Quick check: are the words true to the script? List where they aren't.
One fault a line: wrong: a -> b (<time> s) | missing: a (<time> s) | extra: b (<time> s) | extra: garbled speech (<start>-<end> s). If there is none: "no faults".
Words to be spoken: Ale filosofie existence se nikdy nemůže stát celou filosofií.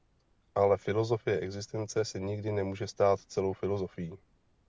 no faults